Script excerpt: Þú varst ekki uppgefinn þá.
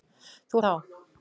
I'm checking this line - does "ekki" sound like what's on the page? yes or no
no